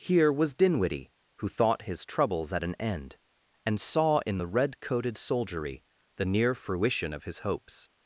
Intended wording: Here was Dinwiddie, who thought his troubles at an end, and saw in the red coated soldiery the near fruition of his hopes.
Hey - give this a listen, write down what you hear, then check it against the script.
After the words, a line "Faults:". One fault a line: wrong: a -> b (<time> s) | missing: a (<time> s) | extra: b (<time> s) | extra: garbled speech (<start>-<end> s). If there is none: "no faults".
Here was Dinwiddie, who thought his troubles at an end, and saw in the red coated soldiery the near fruition of his hopes.
Faults:
no faults